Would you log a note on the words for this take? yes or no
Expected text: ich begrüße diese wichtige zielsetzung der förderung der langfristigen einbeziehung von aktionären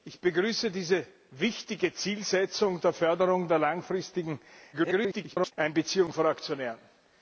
yes